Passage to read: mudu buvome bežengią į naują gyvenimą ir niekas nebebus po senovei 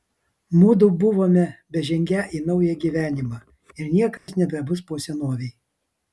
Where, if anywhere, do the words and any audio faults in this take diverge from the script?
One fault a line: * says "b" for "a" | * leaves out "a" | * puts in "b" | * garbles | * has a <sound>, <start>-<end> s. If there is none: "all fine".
* has a dropout, 4.2-4.3 s